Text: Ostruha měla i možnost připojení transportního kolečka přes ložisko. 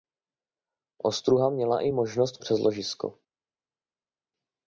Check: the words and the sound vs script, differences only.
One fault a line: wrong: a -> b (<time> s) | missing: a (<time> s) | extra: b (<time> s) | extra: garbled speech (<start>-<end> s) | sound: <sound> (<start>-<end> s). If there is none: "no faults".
missing: připojení transportního kolečka (2.4 s)